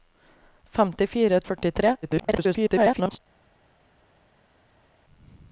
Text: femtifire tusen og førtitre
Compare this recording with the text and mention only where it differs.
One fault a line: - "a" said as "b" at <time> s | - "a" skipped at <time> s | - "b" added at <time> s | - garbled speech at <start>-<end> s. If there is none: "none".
- "tusen" skipped at 1.4 s
- garbled speech at 2.0-3.2 s